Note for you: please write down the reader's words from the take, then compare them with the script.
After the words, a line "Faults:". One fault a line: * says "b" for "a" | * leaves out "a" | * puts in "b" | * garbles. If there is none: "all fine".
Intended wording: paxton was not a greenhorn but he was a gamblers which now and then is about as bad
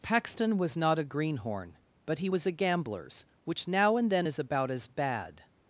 paxton was not a greenhorn but he was a gamblers which now and then is about as bad
Faults:
all fine